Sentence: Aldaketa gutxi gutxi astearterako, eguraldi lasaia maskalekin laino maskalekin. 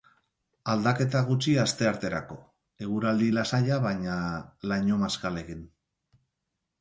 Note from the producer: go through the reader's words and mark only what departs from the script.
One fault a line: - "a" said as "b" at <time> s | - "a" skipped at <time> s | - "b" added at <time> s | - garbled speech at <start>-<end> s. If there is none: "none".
- "gutxi" skipped at 1.5 s
- "maskalekin" said as "baina" at 3.9 s